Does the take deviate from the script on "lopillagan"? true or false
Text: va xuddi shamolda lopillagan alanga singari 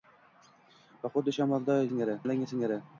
true